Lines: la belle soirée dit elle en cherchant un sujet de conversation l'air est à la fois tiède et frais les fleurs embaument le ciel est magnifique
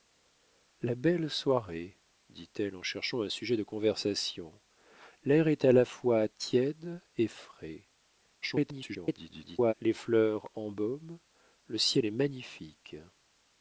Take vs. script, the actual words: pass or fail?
fail